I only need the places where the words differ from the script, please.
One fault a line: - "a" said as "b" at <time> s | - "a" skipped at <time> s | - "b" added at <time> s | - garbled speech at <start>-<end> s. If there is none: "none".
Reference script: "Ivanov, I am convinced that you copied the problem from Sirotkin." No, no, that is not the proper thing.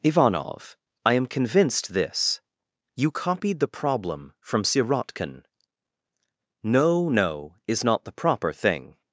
- "that" said as "this" at 1.9 s
- "that" skipped at 7.5 s